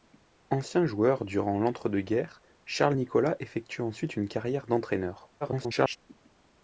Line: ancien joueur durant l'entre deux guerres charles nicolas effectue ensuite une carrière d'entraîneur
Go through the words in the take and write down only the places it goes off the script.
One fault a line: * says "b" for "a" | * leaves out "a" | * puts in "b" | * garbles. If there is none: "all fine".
* garbles